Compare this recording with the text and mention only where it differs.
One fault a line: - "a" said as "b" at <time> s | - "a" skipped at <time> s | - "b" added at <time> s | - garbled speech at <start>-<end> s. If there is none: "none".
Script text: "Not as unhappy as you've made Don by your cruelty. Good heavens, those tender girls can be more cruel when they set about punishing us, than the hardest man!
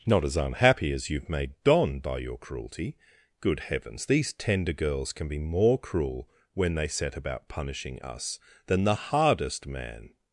- "those" said as "these" at 4.1 s